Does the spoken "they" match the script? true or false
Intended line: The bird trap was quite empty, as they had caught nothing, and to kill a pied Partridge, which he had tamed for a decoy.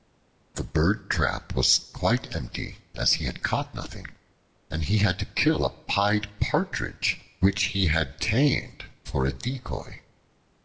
false